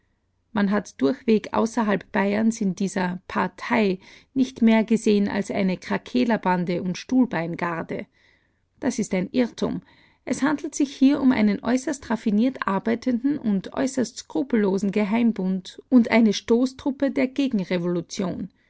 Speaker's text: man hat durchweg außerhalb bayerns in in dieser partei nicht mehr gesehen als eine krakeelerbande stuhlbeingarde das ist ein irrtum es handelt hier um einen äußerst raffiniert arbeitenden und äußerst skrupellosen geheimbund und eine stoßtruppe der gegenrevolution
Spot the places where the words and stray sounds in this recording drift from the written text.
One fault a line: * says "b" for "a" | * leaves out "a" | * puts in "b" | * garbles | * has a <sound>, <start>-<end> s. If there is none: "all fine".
* leaves out "in"
* puts in "und"
* puts in "sich"